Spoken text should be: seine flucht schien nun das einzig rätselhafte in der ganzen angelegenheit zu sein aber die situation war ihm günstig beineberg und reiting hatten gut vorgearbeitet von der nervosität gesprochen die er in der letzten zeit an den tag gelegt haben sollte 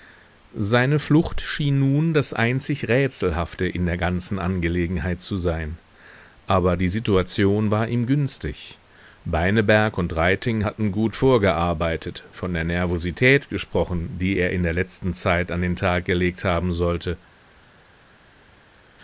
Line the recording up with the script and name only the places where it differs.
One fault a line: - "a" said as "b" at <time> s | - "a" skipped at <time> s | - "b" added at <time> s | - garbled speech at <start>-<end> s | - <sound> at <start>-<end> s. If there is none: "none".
none